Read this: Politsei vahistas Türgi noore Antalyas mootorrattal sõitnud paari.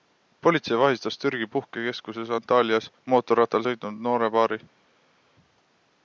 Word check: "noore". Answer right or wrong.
wrong